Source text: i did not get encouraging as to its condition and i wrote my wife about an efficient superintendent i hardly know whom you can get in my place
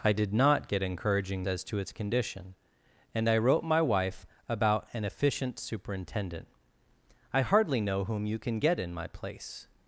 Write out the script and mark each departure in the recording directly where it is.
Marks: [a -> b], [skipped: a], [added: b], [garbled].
i did not get encouraging as to its condition and i wrote my wife about an efficient superintendent i hardly know whom you can get in my place